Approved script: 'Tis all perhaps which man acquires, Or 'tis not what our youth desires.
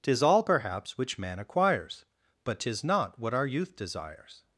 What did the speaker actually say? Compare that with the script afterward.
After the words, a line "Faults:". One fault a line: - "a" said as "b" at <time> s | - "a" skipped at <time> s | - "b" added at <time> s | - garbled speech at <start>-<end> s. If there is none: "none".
'Tis all perhaps which man acquires, But 'tis not what our youth desires.
Faults:
- "Or" said as "But" at 2.4 s